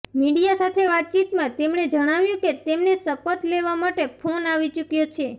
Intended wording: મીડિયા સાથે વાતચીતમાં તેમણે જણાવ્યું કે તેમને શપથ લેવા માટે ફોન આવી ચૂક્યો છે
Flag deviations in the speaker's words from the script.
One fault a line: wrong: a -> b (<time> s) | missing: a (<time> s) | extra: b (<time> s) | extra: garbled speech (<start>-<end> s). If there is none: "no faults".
no faults